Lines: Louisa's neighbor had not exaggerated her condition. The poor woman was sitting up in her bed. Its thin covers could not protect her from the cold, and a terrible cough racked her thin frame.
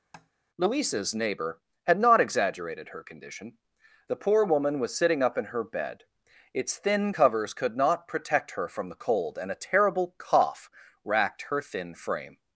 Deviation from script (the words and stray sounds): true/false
true